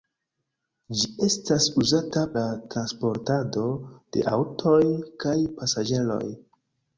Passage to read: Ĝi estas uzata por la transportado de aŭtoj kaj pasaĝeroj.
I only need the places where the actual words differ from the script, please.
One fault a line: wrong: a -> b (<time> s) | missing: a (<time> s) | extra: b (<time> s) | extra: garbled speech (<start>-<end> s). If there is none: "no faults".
missing: por (2.2 s)